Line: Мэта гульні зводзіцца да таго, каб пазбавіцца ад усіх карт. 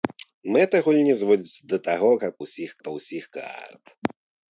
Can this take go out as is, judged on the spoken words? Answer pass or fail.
fail